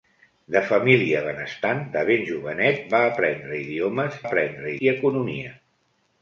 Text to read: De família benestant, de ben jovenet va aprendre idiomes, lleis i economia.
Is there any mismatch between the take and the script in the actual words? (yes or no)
yes